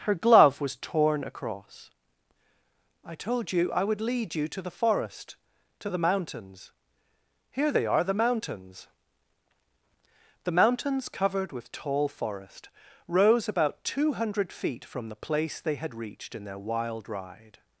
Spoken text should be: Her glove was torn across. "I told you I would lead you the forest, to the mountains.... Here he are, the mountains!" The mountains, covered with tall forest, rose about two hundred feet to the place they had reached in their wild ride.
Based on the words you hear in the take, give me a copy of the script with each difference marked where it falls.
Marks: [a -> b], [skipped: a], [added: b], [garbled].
Her glove was torn across. "I told you I would lead you [added: to] the forest, to the mountains.... Here [he -> they] are, the mountains!" The mountains, covered with tall forest, rose about two hundred feet [to -> from] the place they had reached in their wild ride.